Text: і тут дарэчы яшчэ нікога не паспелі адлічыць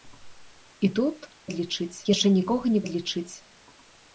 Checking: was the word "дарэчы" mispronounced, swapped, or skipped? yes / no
yes